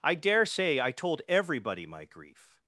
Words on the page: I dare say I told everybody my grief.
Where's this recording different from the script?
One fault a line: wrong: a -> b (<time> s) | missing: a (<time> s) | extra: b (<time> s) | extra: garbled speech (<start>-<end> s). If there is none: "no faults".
no faults